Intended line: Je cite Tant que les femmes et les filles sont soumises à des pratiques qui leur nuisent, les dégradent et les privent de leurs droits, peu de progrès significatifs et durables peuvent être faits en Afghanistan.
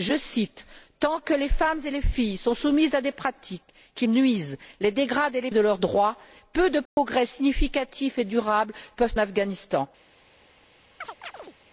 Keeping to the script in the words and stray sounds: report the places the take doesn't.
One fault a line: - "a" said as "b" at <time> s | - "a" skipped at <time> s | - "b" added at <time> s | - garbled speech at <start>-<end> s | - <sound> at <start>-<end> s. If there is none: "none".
- "leur" skipped at 4.1 s
- "privent" skipped at 5.5 s
- dropout at 6.9-7.0 s
- "être faits en" skipped at 9.1 s
- chirp at 11.0-11.5 s